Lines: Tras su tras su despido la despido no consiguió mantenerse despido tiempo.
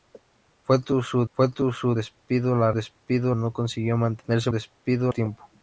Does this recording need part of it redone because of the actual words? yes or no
no